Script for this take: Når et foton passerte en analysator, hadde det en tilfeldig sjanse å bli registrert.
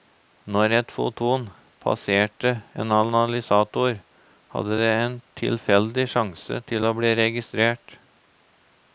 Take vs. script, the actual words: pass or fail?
fail